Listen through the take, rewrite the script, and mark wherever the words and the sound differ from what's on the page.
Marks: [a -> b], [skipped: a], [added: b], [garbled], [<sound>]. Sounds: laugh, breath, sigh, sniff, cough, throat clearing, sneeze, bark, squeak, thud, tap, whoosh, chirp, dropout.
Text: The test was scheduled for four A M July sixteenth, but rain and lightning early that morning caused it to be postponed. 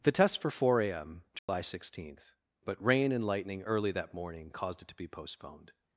The test [skipped: was scheduled] for four A M July [dropout] sixteenth, but rain and lightning early that morning caused it to be postponed.